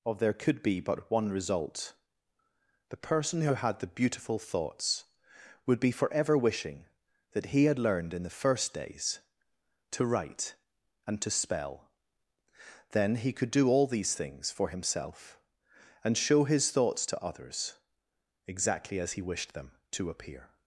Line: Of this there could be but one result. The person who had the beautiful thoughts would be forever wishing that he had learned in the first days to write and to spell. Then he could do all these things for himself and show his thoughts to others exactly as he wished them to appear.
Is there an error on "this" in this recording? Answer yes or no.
yes